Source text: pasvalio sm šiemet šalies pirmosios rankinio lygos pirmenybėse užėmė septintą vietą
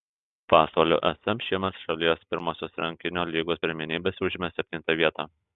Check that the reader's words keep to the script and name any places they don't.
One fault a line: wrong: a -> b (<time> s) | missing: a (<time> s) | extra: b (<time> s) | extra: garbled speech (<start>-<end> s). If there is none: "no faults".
no faults